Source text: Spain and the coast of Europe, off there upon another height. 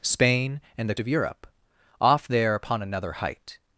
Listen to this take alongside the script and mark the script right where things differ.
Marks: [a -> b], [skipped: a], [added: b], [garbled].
Spain and the [skipped: coast] of Europe, off there upon another height.